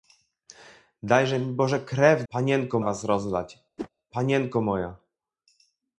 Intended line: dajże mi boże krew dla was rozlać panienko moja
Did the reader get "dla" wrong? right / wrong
wrong